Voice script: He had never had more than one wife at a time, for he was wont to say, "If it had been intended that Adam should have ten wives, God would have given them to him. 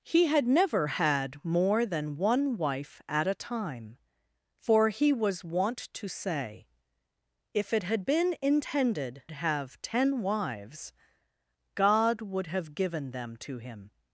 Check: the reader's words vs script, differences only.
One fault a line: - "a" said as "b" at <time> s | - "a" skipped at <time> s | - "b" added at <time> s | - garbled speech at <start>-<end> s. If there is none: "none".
- "that Adam should" skipped at 9.2 s